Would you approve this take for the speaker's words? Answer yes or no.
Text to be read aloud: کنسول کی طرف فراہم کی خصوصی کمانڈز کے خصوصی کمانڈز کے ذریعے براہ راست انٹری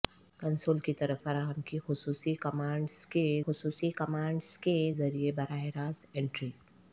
yes